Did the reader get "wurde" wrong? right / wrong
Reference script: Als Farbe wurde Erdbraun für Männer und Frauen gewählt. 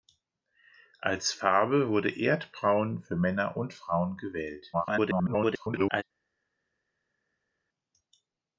right